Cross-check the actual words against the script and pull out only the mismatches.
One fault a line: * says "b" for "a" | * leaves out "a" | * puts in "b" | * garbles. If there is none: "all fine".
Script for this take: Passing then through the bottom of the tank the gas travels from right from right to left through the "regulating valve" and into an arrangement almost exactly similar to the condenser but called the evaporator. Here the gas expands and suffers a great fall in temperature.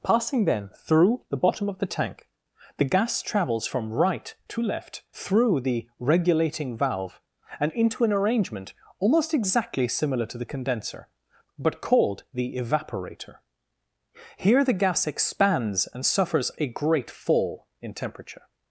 * leaves out "from right"